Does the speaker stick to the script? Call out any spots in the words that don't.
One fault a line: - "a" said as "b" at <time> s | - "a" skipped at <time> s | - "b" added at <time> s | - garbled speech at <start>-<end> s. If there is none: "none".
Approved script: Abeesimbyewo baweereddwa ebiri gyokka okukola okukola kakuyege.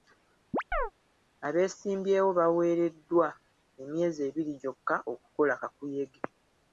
- "emyezi" added at 3.8 s
- "okukola" skipped at 5.5 s